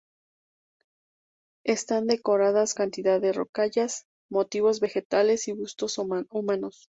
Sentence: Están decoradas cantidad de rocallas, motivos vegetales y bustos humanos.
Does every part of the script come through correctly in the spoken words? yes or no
yes